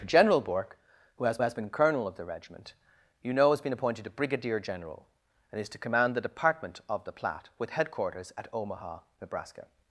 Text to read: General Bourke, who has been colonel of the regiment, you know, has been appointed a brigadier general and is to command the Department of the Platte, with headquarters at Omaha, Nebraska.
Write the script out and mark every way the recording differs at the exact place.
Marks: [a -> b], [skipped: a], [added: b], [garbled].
General Bourke, who has [added: has] been colonel of the regiment, you know, has been appointed a brigadier general and is to command the Department of the Platte, with headquarters at Omaha, Nebraska.